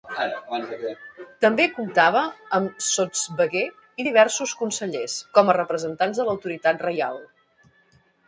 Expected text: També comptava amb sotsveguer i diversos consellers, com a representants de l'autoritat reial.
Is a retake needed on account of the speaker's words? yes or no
no